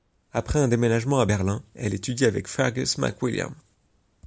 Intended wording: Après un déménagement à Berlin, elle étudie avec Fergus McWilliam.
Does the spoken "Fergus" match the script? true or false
true